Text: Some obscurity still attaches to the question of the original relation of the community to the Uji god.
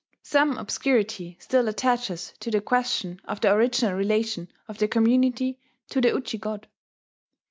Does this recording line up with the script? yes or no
yes